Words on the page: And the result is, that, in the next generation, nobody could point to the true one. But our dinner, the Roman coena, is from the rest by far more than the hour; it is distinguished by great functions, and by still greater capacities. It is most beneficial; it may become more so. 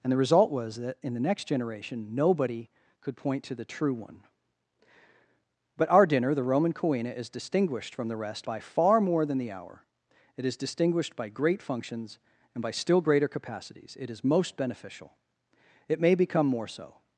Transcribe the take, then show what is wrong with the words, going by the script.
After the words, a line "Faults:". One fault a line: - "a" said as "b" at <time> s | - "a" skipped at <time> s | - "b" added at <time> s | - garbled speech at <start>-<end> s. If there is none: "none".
And the result was, that, in the next generation, nobody could point to the true one. But our dinner, the Roman coena, is distinguished from the rest by far more than the hour; it is distinguished by great functions, and by still greater capacities. It is most beneficial; it may become more so.
Faults:
- "is" said as "was" at 0.5 s
- "distinguished" added at 7.3 s